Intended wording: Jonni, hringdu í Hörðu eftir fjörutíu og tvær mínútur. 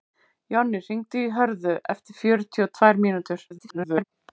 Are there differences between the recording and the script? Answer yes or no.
yes